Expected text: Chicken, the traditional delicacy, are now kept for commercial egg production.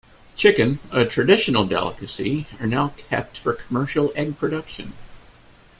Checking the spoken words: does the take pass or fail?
fail